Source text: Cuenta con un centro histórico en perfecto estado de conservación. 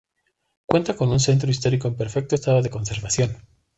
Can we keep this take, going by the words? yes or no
yes